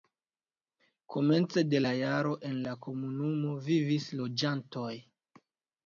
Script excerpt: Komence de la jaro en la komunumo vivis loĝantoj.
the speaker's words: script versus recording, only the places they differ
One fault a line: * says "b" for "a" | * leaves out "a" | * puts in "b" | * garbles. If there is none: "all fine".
all fine